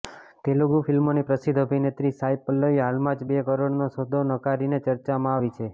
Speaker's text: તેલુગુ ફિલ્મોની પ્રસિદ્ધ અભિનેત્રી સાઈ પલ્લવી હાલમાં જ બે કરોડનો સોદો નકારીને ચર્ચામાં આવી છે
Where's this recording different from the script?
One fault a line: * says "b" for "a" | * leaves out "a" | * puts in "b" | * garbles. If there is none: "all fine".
all fine